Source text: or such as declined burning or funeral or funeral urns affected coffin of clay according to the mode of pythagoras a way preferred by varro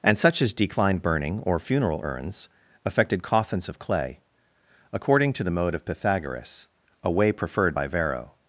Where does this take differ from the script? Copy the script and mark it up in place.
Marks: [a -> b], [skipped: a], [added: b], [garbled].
[or -> and] such as declined burning or funeral [skipped: or funeral] urns affected [coffin -> coffins] of clay according to the mode of pythagoras a way preferred by varro